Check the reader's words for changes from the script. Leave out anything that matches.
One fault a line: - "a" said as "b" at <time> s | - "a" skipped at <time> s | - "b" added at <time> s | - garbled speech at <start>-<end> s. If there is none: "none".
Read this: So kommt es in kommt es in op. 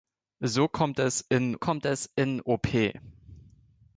none